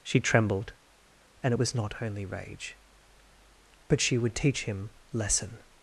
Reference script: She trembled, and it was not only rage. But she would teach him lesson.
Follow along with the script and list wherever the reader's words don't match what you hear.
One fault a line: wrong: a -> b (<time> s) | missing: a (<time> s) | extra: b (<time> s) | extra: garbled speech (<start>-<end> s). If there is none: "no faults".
no faults